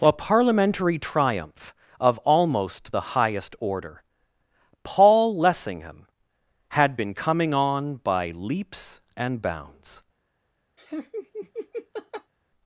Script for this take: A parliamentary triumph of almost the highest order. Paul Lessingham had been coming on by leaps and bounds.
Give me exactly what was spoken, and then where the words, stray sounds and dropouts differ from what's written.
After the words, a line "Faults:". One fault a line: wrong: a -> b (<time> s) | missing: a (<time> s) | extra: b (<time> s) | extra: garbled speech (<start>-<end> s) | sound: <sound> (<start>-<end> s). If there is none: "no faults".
A parliamentary triumph of almost the highest order. Paul Lessingham had been coming on by leaps and bounds.
Faults:
sound: laugh (10.8-12.3 s)